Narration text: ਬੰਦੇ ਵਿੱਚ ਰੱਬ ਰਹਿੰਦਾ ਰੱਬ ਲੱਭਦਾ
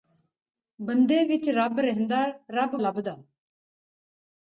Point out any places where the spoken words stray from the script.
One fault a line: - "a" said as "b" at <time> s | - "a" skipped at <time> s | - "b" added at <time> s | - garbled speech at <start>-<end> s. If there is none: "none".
none